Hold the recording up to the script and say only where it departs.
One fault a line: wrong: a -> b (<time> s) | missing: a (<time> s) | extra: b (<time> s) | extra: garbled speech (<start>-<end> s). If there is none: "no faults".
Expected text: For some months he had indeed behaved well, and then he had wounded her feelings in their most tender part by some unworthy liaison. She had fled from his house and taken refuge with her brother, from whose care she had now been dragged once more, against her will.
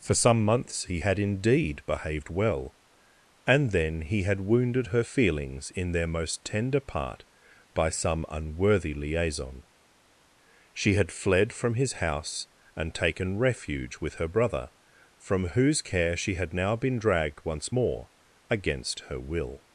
no faults